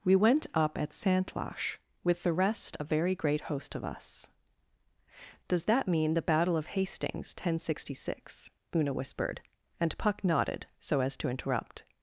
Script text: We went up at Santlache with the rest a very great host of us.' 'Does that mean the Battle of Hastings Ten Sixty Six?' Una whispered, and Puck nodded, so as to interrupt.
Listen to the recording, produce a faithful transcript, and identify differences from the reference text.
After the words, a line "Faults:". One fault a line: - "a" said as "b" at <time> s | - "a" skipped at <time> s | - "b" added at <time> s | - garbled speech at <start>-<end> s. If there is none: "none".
We went up at Santlache with the rest a very great host of us.' 'Does that mean the Battle of Hastings Ten Sixty Six?' Una whispered, and Puck nodded, so as to interrupt.
Faults:
none